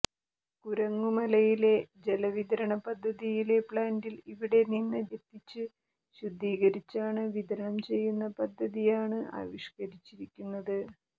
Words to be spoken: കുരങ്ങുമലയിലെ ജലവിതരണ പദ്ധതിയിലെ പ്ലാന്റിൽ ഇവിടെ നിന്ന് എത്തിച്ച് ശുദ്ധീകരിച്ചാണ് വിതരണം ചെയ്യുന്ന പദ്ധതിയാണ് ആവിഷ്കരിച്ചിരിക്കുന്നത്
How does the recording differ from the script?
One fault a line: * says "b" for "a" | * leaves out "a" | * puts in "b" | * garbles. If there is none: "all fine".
all fine